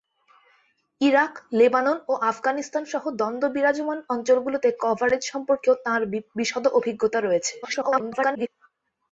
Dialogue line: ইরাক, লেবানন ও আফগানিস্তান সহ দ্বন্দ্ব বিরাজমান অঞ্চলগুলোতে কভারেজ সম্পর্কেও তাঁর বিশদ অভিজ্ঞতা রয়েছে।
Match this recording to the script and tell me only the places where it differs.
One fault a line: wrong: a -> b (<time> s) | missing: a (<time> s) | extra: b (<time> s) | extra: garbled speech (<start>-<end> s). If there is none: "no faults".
extra: garbled speech (7.6-8.5 s)